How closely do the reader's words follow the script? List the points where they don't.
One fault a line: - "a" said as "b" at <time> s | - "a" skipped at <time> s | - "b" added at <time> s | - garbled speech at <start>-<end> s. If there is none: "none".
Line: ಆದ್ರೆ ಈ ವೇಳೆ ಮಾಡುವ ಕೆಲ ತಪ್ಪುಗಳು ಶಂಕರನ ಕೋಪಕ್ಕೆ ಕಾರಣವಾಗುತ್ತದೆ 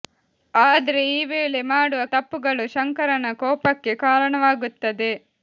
- "ಕೆಲ" skipped at 2.0 s